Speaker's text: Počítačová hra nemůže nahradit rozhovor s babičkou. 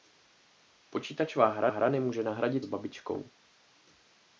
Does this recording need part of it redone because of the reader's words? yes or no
yes